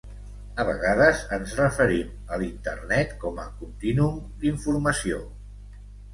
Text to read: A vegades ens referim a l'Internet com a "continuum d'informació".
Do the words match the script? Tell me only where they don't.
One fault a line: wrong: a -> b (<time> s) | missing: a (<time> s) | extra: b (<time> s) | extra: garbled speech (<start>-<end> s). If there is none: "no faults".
no faults